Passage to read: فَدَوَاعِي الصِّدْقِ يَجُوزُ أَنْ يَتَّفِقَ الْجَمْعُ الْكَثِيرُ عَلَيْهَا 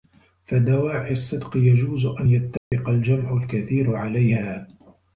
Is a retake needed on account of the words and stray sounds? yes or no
yes